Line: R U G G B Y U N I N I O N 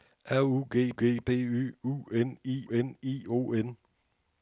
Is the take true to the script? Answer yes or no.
yes